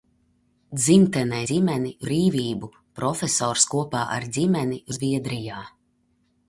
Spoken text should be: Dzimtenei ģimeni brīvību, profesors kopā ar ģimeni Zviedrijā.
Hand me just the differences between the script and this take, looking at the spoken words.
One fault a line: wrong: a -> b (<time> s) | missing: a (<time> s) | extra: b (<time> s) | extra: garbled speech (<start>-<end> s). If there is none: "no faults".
no faults